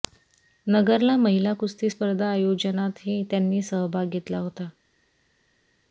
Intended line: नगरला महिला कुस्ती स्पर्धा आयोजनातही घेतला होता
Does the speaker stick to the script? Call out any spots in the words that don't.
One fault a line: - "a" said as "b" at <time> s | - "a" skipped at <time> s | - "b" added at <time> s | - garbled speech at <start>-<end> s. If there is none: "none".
- "त्यांनी सहभाग" added at 3.3 s